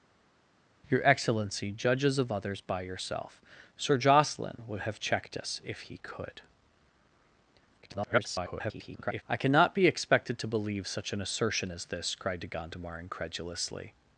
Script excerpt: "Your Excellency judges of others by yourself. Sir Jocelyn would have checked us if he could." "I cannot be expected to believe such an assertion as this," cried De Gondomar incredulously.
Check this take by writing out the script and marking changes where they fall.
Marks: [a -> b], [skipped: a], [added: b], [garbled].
"Your Excellency judges of others by yourself. Sir Jocelyn would have checked us if he could." [garbled] "I cannot be expected to believe such an assertion as this," cried De Gondomar incredulously.